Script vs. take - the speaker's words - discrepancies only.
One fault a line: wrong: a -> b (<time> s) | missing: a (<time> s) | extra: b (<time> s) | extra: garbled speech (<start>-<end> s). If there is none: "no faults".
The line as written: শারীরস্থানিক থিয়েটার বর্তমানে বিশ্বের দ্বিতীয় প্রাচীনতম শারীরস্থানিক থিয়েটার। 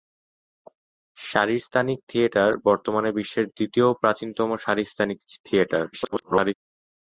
extra: garbled speech (5.9-6.5 s)